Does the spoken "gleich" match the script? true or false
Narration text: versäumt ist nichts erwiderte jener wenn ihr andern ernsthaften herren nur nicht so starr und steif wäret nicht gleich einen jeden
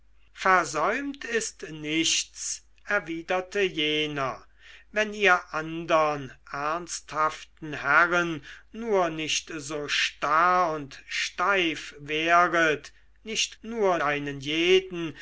false